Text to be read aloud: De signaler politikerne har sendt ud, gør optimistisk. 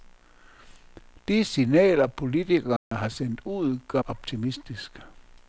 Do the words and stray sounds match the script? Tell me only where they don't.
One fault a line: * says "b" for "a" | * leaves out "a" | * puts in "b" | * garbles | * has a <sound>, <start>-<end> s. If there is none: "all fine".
* has a dropout, 2.8-2.9 s